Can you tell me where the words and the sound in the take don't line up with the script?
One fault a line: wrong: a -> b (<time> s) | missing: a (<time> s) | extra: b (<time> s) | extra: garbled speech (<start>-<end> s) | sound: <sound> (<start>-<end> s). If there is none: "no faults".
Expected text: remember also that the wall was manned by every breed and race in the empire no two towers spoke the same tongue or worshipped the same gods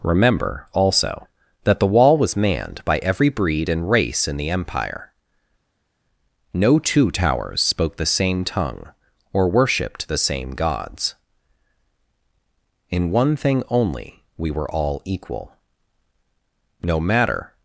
extra: in one thing only we were all equal no matter (12.9 s)